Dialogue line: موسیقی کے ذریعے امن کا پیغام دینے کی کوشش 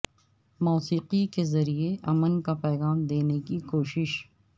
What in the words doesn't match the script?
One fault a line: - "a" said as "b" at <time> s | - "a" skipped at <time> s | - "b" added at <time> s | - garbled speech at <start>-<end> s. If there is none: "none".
none